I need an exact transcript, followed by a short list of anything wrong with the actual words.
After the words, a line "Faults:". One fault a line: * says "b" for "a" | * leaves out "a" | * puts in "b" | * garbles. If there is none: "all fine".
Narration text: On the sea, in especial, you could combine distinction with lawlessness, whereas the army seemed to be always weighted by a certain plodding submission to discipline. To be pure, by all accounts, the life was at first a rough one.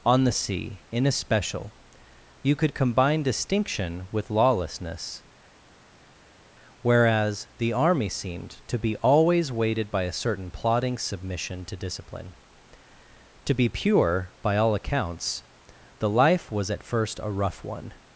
On the sea, in especial, you could combine distinction with lawlessness, whereas the army seemed to be always weighted by a certain plodding submission to discipline. To be pure, by all accounts, the life was at first a rough one.
Faults:
all fine